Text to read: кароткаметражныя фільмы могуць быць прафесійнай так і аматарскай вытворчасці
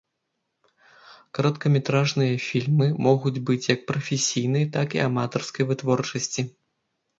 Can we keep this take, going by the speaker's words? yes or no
no